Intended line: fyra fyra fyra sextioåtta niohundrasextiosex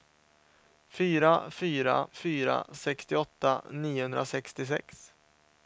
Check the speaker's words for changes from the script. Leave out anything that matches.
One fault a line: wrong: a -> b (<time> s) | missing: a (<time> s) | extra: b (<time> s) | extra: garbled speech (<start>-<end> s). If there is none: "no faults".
no faults